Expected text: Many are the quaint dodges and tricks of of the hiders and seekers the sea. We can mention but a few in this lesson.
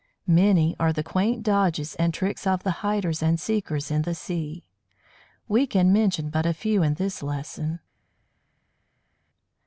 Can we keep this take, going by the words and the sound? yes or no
no